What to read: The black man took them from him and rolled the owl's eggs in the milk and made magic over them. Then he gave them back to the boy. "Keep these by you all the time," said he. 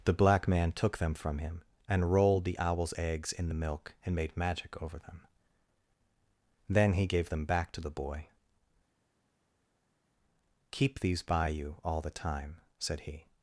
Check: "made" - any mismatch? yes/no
no